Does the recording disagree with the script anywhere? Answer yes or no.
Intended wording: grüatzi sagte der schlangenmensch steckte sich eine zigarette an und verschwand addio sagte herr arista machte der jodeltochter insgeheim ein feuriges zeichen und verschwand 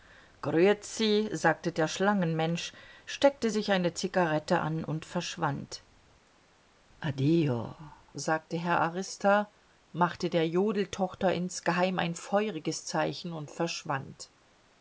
no